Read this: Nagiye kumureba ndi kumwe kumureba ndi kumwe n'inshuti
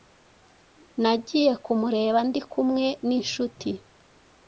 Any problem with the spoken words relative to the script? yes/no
yes